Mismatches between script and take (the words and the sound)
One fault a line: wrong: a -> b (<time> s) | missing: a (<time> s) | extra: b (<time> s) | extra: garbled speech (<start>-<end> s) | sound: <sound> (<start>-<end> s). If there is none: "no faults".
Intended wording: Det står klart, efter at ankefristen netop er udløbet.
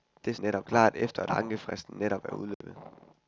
wrong: står -> netop (0.4 s)
sound: dropout (2.5-2.6 s)